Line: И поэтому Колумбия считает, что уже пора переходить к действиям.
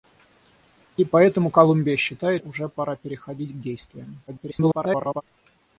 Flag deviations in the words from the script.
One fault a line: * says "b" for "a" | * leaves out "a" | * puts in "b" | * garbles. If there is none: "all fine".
* leaves out "что"
* garbles